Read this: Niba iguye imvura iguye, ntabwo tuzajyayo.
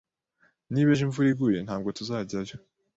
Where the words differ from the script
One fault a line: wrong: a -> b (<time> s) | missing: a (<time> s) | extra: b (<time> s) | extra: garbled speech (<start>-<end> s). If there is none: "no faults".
wrong: iguye -> ejo (0.9 s)